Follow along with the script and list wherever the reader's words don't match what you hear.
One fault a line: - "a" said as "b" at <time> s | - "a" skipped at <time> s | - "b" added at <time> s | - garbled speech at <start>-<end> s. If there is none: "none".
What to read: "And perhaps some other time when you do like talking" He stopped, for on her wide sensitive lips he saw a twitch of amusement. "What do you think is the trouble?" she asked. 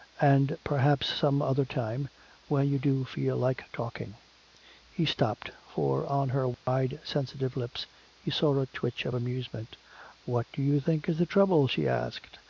- "feel" added at 3.0 s